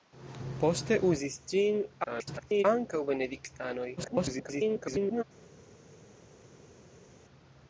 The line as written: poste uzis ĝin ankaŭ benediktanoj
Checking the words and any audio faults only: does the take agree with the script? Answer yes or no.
no